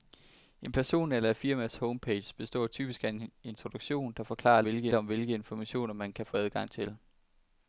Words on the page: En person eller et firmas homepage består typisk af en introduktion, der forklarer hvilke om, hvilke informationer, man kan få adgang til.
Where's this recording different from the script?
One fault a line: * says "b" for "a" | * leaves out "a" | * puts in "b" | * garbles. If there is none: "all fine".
all fine